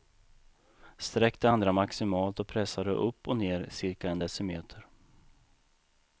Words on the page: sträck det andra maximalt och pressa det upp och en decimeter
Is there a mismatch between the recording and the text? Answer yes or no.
yes